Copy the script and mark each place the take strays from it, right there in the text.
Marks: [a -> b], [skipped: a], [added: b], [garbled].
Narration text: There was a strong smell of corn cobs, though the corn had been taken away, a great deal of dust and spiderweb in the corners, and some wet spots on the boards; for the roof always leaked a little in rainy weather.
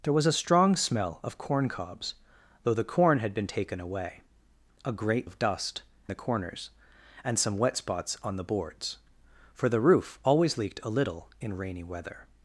There was a strong smell of corn cobs, though the corn had been taken away, a great [skipped: deal] of dust [skipped: and spiderweb in] the corners, and some wet spots on the boards; for the roof always leaked a little in rainy weather.